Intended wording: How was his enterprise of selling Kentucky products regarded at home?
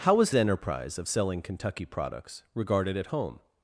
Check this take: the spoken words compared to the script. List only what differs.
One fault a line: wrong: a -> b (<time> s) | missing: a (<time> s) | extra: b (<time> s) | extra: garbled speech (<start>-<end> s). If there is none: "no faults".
missing: his (0.3 s)